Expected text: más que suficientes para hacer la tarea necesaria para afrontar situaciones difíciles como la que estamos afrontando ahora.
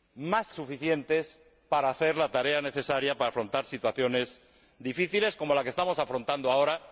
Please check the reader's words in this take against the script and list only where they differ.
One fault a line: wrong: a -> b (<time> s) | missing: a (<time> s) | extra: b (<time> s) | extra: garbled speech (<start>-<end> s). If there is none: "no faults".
missing: que (0.5 s)